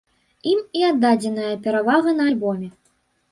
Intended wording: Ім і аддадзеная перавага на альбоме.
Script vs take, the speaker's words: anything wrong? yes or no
no